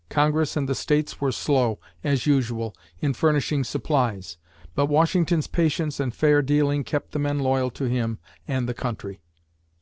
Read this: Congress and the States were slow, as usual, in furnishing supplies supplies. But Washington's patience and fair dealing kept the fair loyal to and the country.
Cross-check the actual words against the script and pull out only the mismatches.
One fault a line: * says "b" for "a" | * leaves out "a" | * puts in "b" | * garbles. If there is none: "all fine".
* leaves out "supplies"
* says "men" for "fair"
* puts in "him"